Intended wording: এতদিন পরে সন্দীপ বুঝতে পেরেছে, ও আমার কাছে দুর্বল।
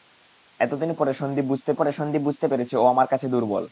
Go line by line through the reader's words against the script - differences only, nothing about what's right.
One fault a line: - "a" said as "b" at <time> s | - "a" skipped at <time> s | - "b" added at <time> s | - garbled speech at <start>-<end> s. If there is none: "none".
- "পরে সন্দীপ বুঝতে" added at 1.7 s